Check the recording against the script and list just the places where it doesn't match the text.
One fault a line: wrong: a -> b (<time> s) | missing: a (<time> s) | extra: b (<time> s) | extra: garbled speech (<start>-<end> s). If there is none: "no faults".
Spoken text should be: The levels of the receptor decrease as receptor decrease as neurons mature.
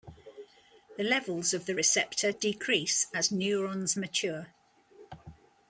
missing: receptor decrease as (3.3 s)